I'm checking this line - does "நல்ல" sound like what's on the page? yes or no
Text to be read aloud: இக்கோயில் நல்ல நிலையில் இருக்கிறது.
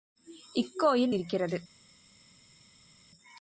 no